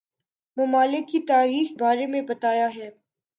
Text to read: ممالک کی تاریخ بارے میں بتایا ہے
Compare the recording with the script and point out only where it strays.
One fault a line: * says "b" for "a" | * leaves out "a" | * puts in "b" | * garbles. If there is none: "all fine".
all fine